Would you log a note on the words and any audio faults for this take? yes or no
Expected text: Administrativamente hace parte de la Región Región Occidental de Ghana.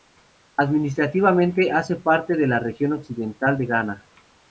yes